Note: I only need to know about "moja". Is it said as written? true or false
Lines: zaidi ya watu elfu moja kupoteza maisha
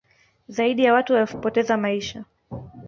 false